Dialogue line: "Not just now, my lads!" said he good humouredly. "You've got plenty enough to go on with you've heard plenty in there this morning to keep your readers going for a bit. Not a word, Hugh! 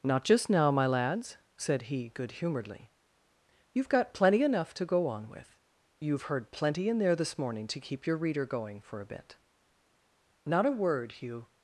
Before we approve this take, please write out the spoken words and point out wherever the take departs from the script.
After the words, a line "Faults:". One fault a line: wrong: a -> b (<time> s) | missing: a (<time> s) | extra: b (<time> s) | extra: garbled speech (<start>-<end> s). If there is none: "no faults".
"Not just now, my lads!" said he good humouredly. "You've got plenty enough to go on with you've heard plenty in there this morning to keep your reader going for a bit. Not a word, Hugh!
Faults:
wrong: readers -> reader (8.2 s)